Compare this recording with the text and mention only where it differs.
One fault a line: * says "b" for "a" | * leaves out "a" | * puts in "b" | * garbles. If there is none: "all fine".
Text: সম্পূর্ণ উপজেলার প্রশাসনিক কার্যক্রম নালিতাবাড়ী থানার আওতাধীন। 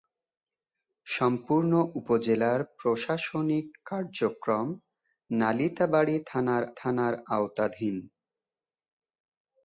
* puts in "থানার"